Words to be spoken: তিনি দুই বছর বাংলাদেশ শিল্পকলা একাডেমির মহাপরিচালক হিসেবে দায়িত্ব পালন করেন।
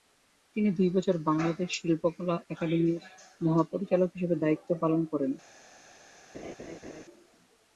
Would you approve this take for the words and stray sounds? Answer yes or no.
no